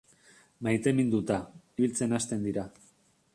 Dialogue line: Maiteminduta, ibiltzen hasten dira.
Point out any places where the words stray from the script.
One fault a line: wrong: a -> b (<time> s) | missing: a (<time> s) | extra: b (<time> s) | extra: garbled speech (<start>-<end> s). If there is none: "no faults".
no faults